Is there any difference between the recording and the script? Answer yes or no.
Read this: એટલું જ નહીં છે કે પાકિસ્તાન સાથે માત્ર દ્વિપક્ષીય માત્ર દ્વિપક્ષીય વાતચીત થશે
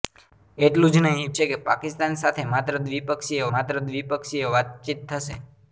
no